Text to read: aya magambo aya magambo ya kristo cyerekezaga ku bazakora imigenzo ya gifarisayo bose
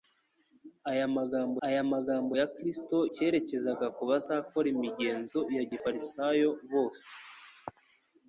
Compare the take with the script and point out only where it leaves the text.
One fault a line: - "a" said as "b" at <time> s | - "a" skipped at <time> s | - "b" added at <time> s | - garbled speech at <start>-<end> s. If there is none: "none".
none